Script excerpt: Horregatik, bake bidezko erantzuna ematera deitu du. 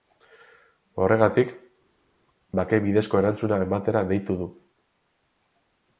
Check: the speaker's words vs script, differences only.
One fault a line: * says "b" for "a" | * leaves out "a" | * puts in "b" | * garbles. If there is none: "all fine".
all fine